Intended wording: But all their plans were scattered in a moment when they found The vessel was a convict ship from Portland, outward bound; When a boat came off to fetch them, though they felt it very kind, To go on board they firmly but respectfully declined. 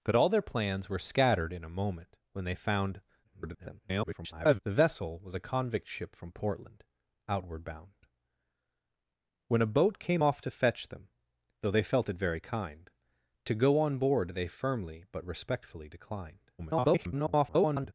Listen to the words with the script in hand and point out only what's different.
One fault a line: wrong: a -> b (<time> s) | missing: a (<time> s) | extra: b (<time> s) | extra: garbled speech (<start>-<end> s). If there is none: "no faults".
extra: garbled speech (3.2-4.6 s)
extra: garbled speech (16.6-17.9 s)